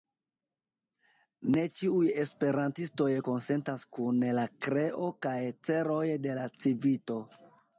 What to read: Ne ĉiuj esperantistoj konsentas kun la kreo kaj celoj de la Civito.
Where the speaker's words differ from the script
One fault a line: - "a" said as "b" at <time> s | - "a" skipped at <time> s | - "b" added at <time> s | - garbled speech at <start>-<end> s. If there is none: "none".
none